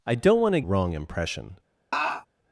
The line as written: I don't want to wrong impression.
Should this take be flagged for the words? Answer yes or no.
no